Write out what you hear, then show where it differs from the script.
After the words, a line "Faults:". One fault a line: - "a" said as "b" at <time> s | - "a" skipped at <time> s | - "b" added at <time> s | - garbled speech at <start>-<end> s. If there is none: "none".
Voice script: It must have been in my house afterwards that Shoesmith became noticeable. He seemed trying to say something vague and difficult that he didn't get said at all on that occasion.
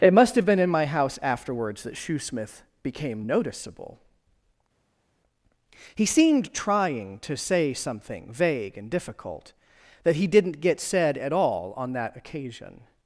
It must have been in my house afterwards that Shoesmith became noticeable. He seemed trying to say something vague and difficult that he didn't get said at all on that occasion.
Faults:
none